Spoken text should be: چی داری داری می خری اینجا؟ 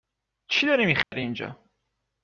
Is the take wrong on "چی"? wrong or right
right